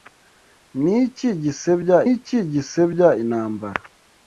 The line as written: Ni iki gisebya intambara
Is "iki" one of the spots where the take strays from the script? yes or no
no